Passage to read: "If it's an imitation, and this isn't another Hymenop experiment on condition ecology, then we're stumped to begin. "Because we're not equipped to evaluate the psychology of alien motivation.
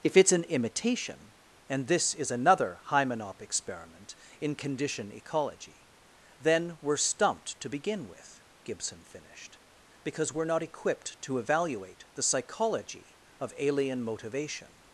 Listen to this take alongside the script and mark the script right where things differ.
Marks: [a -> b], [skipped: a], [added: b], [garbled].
"If it's an imitation, and this [isn't -> is] another Hymenop experiment [on -> in] condition ecology, then we're stumped to begin. [added: with Gibson finished] "Because we're not equipped to evaluate the psychology of alien motivation.